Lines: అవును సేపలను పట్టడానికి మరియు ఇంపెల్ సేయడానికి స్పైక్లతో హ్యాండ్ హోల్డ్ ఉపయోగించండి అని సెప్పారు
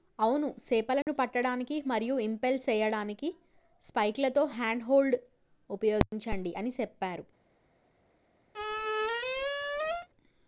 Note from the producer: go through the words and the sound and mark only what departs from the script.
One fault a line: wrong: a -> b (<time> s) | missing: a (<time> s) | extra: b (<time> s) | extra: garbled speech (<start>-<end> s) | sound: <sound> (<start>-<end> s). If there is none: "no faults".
sound: dropout (1.0-1.1 s)
sound: squeak (8.5-10.1 s)